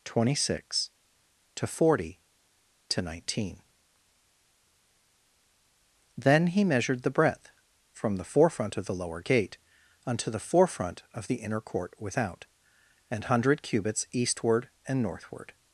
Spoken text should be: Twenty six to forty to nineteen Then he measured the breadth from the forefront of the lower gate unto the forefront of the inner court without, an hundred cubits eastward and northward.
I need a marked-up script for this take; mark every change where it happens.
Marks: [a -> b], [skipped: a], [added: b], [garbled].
Twenty six to forty to nineteen Then he measured the breadth from the forefront of the lower gate unto the forefront of the inner court without, an hundred cubits eastward and northward.